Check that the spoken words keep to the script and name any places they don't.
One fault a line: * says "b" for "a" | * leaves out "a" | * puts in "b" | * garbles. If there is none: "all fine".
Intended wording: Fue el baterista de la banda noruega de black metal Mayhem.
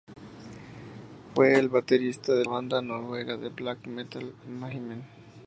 * leaves out "la"